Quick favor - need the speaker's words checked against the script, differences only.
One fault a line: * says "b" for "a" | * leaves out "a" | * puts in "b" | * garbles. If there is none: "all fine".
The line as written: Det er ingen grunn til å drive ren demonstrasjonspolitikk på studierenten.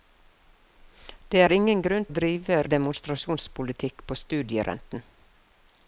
* leaves out "til"
* leaves out "ren"